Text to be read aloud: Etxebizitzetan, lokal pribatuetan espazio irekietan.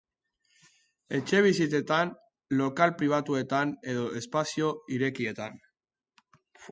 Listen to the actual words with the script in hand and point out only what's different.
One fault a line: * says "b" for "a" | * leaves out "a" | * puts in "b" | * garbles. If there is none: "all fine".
* puts in "edo"